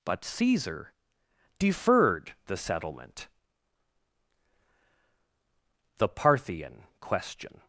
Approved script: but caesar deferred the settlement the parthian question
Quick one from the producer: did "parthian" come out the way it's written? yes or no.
yes